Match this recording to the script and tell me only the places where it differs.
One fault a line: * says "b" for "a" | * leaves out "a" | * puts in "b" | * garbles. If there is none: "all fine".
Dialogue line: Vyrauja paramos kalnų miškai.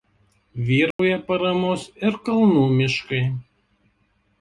* puts in "ir"